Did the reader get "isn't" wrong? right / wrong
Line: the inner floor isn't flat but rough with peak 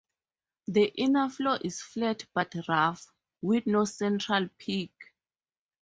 wrong